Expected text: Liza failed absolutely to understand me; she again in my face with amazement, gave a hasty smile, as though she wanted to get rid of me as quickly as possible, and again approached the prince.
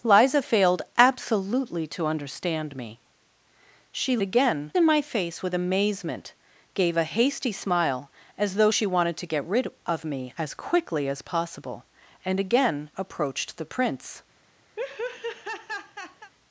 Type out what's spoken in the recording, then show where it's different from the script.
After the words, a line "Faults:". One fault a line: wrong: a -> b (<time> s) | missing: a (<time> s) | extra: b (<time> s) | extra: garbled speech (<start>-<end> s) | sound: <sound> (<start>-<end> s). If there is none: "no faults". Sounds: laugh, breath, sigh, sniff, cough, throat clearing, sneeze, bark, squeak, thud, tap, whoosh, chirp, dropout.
Liza failed absolutely to understand me; she again in my face with amazement, gave a hasty smile, as though she wanted to get rid of me as quickly as possible, and again approached the prince.
Faults:
sound: laugh (14.8-16.3 s)